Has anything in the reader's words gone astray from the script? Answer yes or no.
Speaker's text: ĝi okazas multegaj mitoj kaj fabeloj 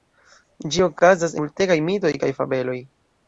no